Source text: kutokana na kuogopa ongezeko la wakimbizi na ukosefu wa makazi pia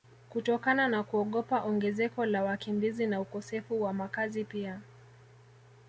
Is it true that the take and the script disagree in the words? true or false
false